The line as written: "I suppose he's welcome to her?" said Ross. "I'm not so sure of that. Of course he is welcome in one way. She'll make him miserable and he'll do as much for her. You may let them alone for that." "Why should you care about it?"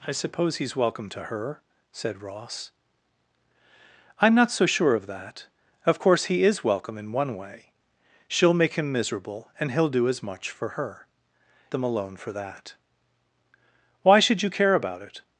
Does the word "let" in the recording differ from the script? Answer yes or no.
yes